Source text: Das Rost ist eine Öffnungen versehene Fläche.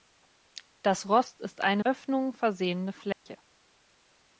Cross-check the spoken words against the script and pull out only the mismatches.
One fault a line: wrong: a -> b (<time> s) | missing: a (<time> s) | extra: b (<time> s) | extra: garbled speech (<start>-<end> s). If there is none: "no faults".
no faults